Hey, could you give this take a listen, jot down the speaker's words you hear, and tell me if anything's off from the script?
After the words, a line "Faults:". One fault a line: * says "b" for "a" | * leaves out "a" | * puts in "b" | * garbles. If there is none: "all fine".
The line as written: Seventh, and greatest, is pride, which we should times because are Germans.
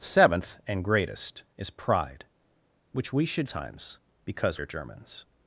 Seventh, and greatest, is pride, which we should times because are Germans.
Faults:
all fine